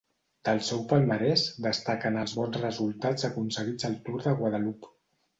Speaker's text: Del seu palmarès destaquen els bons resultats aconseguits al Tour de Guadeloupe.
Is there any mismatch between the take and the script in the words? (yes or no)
no